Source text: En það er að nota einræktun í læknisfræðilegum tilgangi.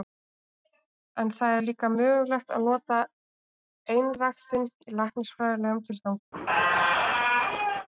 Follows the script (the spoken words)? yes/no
no